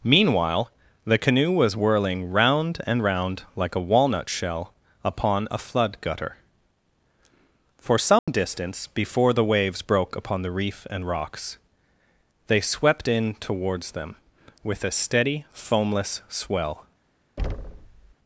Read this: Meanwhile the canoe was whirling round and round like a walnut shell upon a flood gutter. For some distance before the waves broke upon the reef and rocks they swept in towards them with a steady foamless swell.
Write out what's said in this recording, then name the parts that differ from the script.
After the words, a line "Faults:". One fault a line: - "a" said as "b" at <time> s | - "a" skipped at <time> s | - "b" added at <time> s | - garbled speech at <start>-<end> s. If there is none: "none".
Meanwhile the canoe was whirling round and round like a walnut shell upon a flood gutter. For some distance before the waves broke upon the reef and rocks they swept in towards them with a steady foamless swell.
Faults:
none